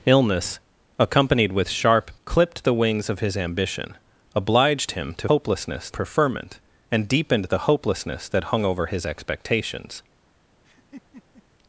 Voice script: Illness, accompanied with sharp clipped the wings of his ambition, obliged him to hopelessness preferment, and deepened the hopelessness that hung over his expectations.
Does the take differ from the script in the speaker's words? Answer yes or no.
no